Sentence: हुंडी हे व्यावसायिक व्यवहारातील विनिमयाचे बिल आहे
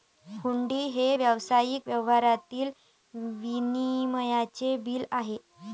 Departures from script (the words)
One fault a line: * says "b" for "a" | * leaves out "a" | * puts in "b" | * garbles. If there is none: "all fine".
all fine